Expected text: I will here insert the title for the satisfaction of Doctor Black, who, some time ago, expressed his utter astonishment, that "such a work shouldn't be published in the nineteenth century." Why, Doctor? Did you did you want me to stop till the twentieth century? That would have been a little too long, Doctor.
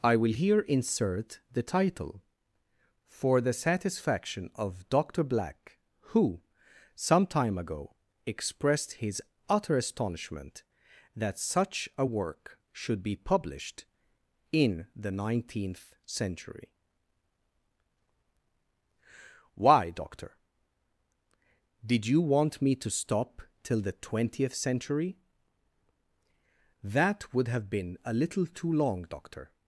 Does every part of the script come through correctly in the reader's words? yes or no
no